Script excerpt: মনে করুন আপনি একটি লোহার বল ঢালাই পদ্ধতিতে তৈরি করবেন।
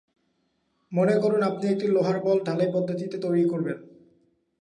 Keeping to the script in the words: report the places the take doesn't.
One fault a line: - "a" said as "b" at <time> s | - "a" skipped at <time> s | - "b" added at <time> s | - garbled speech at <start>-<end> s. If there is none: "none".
none